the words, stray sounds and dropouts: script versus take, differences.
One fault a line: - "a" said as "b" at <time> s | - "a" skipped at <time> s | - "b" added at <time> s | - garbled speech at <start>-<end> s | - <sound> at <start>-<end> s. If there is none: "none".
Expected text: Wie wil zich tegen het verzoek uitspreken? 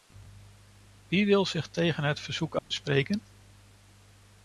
- dropout at 2.6-2.7 s